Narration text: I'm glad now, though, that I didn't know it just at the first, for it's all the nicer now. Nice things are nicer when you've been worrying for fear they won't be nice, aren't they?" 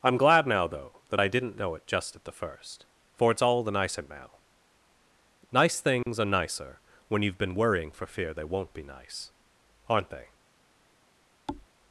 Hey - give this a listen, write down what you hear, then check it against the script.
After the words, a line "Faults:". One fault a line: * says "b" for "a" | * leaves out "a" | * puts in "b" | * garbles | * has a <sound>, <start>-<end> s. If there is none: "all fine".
I'm glad now, though, that I didn't know it just at the first, for it's all the nicer now. Nice things are nicer when you've been worrying for fear they won't be nice, aren't they?"
Faults:
* has a dropout, 6.0-6.1 s
* has a thud, 11.5-11.7 s